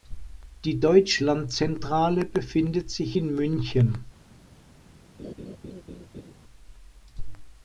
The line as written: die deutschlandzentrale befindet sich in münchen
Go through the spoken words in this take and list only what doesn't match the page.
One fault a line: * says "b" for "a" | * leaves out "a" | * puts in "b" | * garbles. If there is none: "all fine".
all fine